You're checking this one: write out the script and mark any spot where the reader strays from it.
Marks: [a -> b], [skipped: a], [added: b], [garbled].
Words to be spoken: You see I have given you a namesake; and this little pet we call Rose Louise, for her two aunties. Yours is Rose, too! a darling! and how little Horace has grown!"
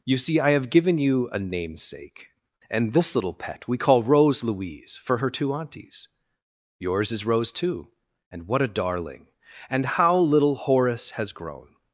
You see I have given you a namesake; and this little pet we call Rose Louise, for her two aunties. Yours is Rose, too! [added: and what] a darling! and how little Horace has grown!"